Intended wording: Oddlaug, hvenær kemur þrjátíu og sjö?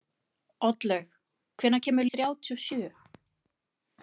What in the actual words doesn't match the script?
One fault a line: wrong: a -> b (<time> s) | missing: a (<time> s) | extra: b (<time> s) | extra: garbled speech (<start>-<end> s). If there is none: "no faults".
no faults